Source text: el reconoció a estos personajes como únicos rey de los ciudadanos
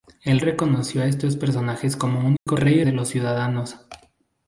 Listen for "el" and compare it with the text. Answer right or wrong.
right